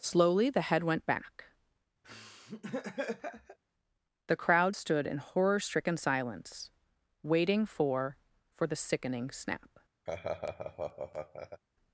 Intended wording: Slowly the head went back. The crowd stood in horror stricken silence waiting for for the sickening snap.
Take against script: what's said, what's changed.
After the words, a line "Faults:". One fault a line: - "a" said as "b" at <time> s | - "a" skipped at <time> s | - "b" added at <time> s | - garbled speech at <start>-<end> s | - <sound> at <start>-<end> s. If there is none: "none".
Slowly the head went back. The crowd stood in horror stricken silence waiting for for the sickening snap.
Faults:
- laugh at 2.0-3.6 s
- laugh at 10.1-11.6 s